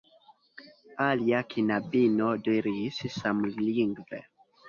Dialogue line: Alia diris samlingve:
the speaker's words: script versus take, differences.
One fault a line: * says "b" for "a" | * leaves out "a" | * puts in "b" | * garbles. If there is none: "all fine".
* puts in "knabino"